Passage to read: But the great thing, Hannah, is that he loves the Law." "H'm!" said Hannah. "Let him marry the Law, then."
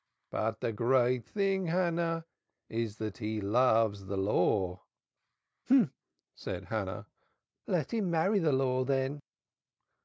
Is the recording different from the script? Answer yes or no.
no